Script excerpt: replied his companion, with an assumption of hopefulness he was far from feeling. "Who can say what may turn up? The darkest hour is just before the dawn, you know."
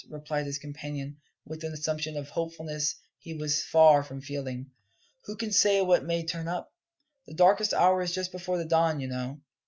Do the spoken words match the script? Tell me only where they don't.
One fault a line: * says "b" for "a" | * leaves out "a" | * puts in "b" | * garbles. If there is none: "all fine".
all fine